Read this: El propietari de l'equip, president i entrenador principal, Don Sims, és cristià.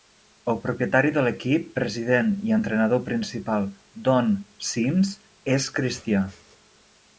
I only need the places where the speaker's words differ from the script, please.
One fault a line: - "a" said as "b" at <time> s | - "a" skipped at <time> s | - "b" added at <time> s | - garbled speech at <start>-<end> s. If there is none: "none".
none